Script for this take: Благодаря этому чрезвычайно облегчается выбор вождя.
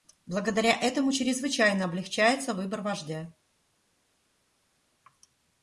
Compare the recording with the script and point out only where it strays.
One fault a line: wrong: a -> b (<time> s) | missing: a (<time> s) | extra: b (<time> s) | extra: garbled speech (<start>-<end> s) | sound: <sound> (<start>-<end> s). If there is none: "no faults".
no faults